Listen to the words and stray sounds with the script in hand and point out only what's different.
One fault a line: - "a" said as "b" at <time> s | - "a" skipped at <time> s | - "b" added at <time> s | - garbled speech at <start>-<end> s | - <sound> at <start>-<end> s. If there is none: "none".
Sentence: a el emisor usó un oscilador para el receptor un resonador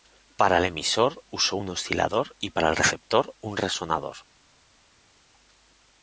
- "a" said as "para" at 0.3 s
- "y" added at 2.4 s